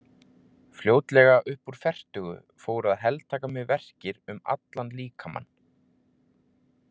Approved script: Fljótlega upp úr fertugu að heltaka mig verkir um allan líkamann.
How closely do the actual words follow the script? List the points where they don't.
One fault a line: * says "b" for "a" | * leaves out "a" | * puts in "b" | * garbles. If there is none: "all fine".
* puts in "fóru"